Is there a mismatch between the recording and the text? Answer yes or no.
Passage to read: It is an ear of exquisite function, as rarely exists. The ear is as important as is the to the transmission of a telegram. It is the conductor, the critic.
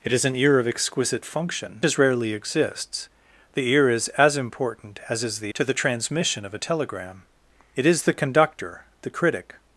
no